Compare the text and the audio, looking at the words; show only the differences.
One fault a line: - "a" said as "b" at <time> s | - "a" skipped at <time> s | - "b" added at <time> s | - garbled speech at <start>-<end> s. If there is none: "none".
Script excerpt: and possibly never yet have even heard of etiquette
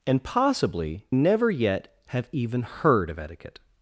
none